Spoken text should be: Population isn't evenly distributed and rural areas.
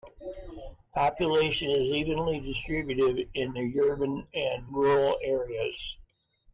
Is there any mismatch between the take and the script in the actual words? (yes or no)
yes